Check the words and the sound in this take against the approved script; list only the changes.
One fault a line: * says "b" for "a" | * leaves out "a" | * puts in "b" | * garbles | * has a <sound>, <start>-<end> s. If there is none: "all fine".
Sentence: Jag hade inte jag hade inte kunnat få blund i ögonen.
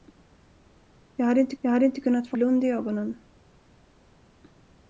all fine